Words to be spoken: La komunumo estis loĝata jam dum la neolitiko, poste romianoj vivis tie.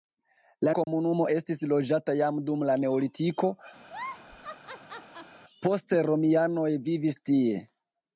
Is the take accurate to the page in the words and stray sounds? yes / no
no